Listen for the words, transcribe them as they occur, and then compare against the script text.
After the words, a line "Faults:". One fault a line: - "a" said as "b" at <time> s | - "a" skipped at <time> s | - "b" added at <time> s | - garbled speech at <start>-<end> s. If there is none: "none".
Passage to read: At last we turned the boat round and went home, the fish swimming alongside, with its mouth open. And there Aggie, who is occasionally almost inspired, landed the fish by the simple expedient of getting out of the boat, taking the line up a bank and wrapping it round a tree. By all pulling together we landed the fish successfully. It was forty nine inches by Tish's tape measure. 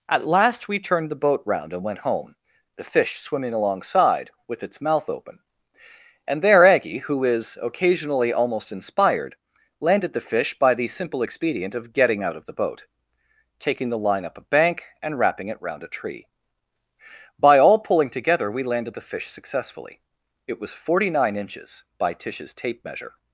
At last we turned the boat round and went home, the fish swimming alongside, with its mouth open. And there Aggie, who is occasionally almost inspired, landed the fish by the simple expedient of getting out of the boat, taking the line up a bank and wrapping it round a tree. By all pulling together we landed the fish successfully. It was forty nine inches by Tish's tape measure.
Faults:
none